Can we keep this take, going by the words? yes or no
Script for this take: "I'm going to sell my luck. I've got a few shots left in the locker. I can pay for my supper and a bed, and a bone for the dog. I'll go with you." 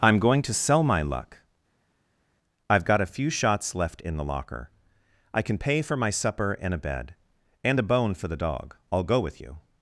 yes